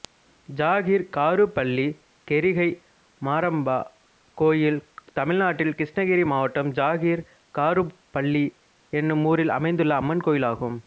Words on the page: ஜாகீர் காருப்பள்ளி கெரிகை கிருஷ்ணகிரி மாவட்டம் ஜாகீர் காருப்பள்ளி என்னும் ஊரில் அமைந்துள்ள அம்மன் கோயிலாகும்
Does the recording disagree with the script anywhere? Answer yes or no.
yes